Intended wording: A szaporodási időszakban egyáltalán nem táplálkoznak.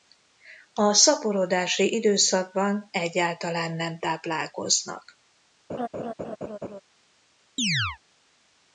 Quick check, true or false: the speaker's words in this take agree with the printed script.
true